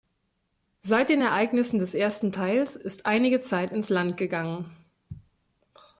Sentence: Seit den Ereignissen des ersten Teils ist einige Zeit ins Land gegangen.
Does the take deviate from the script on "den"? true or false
false